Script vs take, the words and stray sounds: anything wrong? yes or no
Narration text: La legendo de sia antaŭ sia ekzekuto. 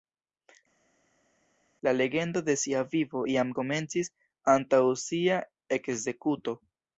yes